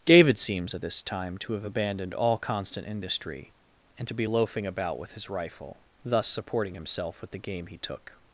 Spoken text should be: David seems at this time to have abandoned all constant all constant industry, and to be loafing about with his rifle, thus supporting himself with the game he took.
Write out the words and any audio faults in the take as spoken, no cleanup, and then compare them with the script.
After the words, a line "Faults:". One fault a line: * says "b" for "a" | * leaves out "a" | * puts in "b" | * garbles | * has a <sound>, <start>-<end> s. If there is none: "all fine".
David seems at this time to have abandoned all constant industry, and to be loafing about with his rifle, thus supporting himself with the game he took.
Faults:
* leaves out "all constant"